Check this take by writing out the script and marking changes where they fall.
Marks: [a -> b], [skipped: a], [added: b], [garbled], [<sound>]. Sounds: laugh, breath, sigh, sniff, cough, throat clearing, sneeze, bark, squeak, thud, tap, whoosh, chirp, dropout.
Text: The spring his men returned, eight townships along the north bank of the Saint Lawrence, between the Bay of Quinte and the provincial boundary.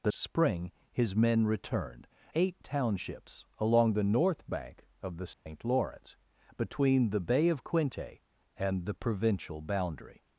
The spring his men returned, eight townships along the north bank of the Saint [dropout] Lawrence, between the Bay of Quinte and the provincial boundary.